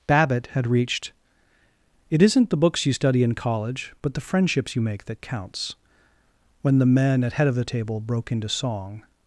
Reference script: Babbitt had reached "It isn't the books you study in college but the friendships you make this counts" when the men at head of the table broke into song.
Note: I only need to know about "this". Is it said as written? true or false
false